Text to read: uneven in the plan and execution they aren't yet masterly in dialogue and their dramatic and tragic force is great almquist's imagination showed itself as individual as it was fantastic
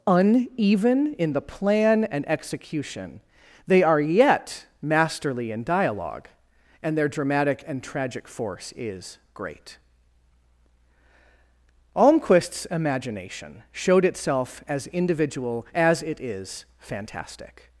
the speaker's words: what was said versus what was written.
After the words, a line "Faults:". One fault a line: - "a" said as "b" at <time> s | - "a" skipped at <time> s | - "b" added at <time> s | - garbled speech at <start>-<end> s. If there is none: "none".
uneven in the plan and execution they are yet masterly in dialogue and their dramatic and tragic force is great almquist's imagination showed itself as individual as it is fantastic
Faults:
- "aren't" said as "are" at 3.8 s
- "was" said as "is" at 16.2 s